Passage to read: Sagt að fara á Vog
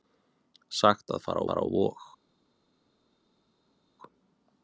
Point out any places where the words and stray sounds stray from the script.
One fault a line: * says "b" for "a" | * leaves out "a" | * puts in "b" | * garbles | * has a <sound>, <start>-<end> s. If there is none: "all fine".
* puts in "fara"